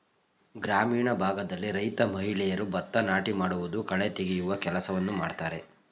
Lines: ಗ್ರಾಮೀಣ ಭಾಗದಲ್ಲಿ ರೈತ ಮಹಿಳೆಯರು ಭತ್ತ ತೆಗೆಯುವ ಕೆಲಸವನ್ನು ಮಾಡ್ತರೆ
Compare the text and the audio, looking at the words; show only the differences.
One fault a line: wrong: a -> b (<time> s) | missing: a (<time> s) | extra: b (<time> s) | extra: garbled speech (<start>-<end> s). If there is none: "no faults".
extra: ನಾಟಿ ಮಾಡುವುದು ಕಳೆ (3.0 s)